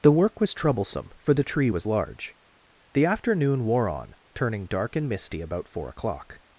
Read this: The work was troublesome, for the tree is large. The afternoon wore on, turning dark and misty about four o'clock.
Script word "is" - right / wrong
wrong